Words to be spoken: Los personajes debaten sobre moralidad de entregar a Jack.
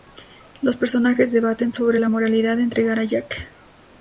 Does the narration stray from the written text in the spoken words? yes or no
yes